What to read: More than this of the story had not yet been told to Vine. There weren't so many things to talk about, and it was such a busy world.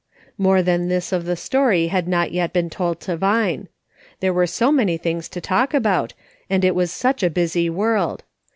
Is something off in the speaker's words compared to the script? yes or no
yes